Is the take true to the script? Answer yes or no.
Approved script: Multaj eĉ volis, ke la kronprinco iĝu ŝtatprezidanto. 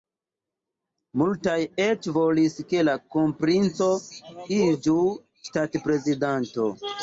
yes